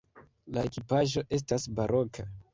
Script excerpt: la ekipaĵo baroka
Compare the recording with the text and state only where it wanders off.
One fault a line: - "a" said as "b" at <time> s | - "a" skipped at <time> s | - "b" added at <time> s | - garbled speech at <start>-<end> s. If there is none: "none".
- "estas" added at 1.4 s